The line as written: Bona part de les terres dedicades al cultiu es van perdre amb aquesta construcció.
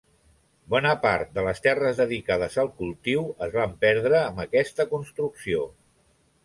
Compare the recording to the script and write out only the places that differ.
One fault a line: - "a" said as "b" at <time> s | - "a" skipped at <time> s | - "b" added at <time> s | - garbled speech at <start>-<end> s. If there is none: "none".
none